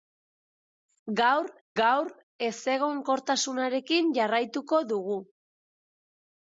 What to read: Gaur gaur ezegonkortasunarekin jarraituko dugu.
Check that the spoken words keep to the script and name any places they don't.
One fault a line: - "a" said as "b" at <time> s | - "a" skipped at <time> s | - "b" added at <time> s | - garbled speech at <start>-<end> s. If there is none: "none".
none